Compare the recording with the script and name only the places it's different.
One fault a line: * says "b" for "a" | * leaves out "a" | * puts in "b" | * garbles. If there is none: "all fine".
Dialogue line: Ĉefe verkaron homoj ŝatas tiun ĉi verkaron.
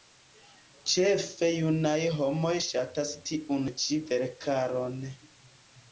* says "junaj" for "verkaron"